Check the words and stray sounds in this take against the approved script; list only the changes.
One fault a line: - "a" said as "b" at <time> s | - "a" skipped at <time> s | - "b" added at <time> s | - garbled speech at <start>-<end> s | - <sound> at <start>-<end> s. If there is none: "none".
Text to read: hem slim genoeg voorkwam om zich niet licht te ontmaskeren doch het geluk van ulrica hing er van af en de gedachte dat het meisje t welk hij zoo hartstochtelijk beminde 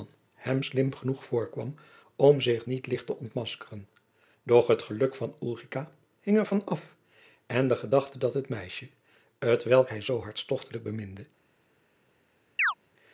- chirp at 12.6-12.7 s